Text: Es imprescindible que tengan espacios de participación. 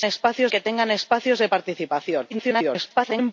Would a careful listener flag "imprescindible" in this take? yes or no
yes